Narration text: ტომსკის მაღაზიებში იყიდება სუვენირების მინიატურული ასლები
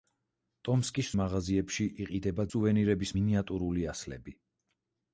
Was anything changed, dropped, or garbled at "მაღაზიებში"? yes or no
no